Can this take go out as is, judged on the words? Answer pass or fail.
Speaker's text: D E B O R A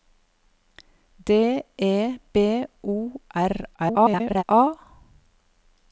fail